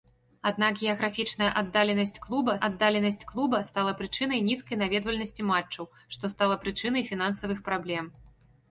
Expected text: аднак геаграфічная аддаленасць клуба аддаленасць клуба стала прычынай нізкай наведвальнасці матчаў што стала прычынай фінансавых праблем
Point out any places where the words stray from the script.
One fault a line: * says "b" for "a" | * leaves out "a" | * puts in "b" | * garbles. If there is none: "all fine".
all fine